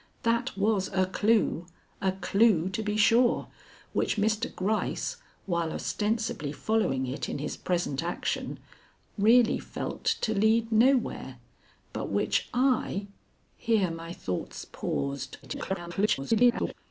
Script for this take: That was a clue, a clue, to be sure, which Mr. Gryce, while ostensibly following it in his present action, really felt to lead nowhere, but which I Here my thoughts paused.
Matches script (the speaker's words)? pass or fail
fail